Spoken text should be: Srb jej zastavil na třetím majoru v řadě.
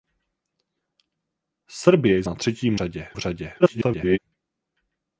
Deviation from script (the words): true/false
true